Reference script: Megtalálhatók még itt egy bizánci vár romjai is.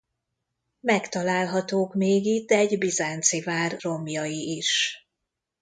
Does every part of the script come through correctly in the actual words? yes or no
yes